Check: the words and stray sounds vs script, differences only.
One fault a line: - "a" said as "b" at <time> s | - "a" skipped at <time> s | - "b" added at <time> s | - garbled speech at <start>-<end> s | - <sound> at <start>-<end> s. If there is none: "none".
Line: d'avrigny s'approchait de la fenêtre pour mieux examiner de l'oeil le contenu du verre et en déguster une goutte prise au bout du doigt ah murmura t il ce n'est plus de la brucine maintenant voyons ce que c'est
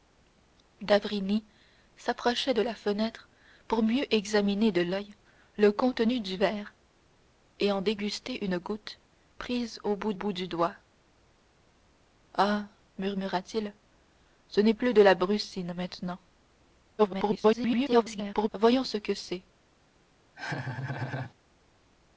- "bout" added at 10.1 s
- garbled speech at 17.0-18.5 s
- laugh at 20.3-21.3 s